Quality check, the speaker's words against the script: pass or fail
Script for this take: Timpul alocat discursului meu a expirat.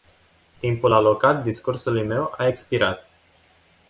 pass